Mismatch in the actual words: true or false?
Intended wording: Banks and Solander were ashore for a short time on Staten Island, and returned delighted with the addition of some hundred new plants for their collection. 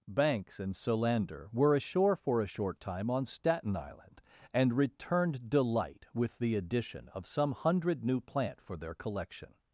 true